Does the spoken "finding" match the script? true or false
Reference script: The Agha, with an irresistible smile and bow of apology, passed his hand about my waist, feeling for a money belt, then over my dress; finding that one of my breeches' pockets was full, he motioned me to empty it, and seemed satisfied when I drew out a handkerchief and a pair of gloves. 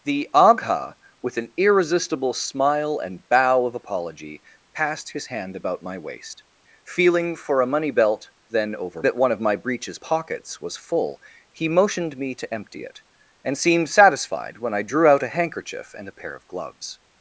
false